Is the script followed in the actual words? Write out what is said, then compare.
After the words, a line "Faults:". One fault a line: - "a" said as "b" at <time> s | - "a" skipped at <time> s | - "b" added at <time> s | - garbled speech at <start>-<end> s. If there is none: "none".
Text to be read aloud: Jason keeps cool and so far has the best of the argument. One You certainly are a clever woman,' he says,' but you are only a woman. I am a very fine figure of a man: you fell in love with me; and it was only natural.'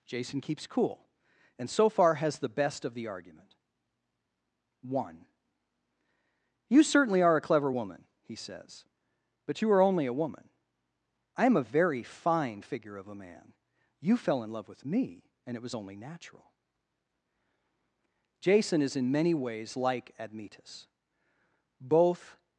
Jason keeps cool and so far has the best of the argument. One You certainly are a clever woman,' he says,' but you are only a woman. I am a very fine figure of a man: you fell in love with me; and it was only natural.' Jason is in many ways like Admetus. Both
Faults:
- "Jason is in many ways like Admetus Both" added at 18.4 s